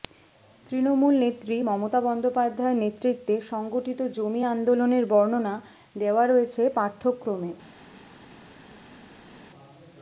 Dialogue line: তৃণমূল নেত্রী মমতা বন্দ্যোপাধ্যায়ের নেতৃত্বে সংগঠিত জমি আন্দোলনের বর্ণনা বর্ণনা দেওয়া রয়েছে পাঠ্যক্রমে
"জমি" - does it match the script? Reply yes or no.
yes